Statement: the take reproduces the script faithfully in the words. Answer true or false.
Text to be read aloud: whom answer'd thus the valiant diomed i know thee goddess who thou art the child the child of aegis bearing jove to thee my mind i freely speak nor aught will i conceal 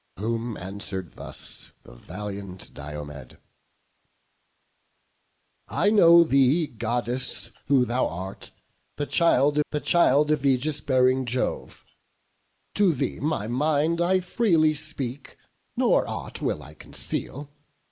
true